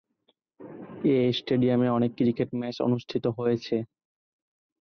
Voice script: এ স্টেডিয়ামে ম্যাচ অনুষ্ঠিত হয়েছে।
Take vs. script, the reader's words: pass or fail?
fail